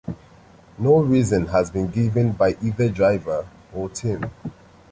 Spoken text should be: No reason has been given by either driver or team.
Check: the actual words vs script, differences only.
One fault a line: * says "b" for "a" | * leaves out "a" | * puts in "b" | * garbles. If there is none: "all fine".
all fine